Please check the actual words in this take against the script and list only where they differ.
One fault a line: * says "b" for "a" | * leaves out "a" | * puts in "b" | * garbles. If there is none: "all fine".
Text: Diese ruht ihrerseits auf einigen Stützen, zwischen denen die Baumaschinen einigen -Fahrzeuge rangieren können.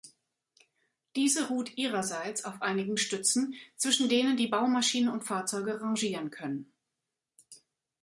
* says "und" for "einigen"